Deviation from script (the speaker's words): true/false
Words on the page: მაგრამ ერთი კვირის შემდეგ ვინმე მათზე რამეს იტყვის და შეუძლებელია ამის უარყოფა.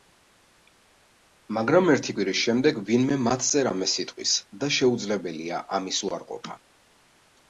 false